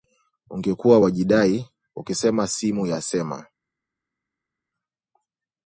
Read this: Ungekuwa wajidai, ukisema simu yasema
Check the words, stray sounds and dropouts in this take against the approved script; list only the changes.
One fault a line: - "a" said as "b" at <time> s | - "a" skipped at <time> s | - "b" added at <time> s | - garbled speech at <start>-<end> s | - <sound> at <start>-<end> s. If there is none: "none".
none